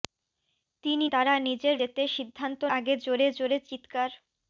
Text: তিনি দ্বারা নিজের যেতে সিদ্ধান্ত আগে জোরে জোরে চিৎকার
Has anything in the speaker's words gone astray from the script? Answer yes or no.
no